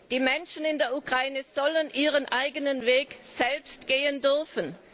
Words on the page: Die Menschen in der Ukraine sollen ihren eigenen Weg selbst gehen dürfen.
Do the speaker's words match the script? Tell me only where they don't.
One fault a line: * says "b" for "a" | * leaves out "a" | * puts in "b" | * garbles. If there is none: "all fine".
all fine